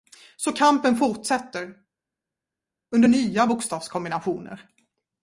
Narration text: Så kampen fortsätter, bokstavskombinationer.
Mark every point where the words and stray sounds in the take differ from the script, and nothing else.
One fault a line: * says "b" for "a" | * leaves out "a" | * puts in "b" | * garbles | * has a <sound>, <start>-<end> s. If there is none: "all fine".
* puts in "under nya"